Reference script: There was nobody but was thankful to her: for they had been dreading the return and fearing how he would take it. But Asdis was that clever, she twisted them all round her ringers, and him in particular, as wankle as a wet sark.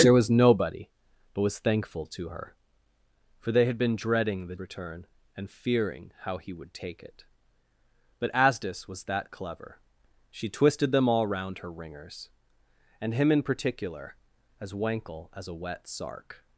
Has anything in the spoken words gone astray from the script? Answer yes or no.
no